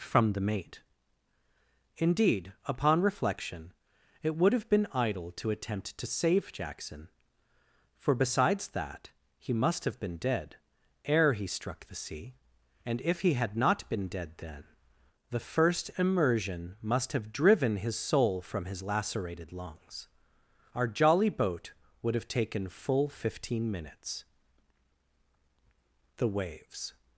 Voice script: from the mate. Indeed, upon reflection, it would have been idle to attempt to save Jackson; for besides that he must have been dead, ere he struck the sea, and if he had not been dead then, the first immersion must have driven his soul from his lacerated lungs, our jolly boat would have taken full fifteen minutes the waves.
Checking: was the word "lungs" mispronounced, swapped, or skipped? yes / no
no